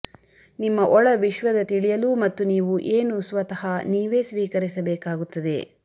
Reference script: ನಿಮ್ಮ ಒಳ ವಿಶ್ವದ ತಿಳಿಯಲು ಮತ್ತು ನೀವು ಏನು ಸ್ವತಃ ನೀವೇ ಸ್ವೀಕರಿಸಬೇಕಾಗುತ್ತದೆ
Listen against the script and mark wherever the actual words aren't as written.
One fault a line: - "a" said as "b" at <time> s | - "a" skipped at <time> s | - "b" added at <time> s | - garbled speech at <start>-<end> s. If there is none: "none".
none